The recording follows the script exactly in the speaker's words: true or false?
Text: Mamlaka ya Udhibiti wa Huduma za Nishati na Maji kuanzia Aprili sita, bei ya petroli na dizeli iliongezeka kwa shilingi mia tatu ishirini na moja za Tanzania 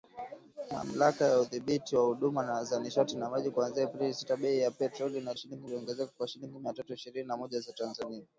false